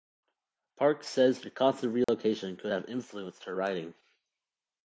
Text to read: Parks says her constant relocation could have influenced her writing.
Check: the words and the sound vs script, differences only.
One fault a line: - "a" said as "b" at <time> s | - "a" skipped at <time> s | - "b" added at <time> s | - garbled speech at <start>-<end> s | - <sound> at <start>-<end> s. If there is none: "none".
- dropout at 2.0-2.1 s